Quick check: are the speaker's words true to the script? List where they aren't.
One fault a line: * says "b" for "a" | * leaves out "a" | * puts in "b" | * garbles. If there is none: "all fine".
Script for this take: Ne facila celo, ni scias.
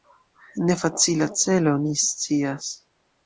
all fine